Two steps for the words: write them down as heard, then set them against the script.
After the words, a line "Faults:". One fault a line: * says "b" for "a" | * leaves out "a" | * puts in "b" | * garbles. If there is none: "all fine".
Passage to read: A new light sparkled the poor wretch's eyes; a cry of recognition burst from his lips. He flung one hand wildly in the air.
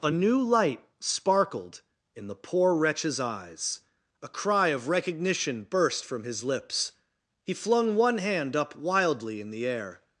A new light sparkled in the poor wretch's eyes; a cry of recognition burst from his lips. He flung one hand up wildly in the air.
Faults:
* puts in "in"
* puts in "up"